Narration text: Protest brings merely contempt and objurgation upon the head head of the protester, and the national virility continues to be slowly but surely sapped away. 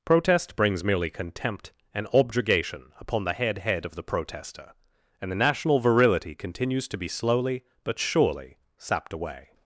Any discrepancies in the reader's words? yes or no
no